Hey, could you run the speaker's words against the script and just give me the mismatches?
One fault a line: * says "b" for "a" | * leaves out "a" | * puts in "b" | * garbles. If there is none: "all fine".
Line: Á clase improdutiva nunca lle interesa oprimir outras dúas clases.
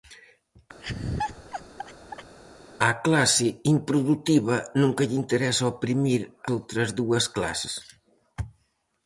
all fine